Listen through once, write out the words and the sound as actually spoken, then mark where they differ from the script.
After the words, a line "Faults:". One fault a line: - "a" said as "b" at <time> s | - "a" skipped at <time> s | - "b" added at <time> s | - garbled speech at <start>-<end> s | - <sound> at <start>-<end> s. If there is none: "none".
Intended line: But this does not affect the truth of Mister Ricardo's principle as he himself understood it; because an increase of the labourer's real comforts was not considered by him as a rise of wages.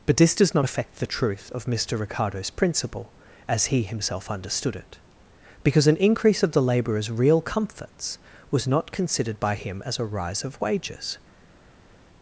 But this does not affect the truth of Mister Ricardo's principle as he himself understood it; because an increase of the labourer's real comforts was not considered by him as a rise of wages.
Faults:
none